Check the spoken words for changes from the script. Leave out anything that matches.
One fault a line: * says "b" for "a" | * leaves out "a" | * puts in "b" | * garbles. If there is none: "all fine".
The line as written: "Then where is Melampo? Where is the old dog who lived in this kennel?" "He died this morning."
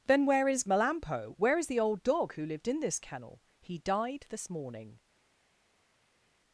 all fine